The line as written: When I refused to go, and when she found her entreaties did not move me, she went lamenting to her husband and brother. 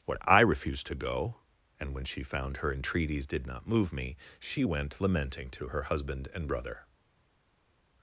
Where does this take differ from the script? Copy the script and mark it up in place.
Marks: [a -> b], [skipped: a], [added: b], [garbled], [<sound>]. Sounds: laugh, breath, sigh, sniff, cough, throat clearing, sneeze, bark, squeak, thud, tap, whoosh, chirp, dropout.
[When -> What] I refused to go, and when she found her entreaties did not move me, she went lamenting to her husband and brother.